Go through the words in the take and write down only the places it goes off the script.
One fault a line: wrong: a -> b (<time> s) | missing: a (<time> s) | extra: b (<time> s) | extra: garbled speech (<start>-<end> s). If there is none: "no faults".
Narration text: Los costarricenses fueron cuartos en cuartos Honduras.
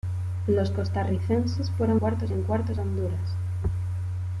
no faults